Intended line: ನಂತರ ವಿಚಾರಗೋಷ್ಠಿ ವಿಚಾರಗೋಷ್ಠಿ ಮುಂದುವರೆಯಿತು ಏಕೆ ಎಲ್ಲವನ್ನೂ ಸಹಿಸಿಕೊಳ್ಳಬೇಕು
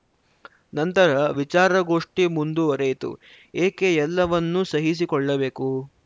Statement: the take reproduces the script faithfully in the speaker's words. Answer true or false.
false